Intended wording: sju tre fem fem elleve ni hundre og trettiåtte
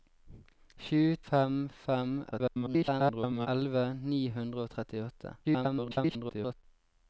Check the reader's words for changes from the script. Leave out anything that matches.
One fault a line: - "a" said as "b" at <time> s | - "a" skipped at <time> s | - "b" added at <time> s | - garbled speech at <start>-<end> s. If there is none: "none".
- "tre" skipped at 1.0 s
- garbled speech at 2.3-3.5 s
- garbled speech at 5.4-6.6 s